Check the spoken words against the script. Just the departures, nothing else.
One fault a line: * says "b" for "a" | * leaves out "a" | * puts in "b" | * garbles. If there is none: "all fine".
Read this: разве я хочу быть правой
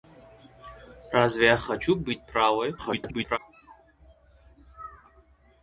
* garbles